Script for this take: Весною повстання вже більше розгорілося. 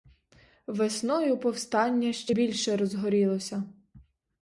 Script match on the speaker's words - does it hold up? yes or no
no